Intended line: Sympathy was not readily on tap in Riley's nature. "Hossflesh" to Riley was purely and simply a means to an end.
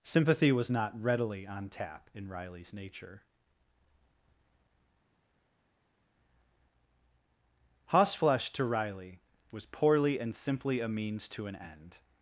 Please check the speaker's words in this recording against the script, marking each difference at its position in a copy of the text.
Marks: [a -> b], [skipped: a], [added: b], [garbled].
Sympathy was not readily on tap in Riley's nature. "Hossflesh" to Riley was [purely -> poorly] and simply a means to an end.